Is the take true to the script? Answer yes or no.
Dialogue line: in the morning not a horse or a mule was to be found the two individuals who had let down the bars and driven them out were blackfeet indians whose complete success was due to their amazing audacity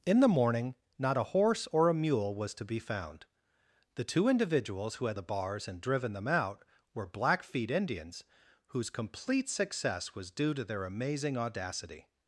no